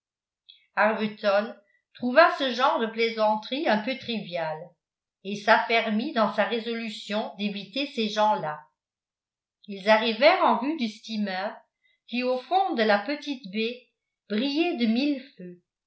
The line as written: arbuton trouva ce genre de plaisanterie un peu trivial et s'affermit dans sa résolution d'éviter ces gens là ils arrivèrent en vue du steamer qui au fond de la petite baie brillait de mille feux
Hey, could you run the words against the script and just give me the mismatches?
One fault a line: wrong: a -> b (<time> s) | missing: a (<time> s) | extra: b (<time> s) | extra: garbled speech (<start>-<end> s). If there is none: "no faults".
no faults